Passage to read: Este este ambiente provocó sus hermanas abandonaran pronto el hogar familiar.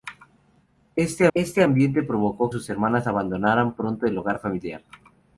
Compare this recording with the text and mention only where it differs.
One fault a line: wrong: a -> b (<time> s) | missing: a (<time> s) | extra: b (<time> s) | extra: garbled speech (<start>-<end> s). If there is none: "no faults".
no faults